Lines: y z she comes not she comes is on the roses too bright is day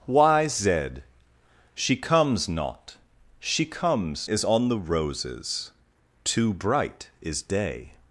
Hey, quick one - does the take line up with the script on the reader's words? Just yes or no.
yes